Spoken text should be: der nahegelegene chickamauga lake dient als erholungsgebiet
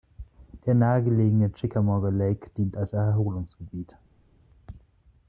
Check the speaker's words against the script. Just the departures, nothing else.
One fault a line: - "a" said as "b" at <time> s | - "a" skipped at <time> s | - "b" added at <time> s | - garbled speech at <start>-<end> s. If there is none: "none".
none